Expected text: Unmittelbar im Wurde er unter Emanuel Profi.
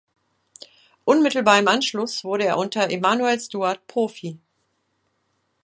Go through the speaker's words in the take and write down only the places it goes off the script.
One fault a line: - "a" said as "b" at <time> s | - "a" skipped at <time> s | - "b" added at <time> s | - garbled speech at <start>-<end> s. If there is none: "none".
- "Anschluss" added at 1.7 s
- "Steward" added at 3.4 s